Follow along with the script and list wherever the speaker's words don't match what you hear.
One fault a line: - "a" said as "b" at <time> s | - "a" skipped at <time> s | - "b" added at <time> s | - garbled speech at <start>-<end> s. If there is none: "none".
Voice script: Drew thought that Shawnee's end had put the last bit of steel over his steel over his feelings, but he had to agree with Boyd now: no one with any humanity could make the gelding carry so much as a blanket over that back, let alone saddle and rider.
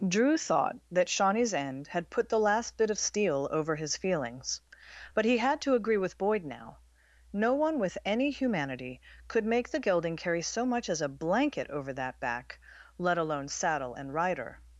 - "steel over his" skipped at 4.0 s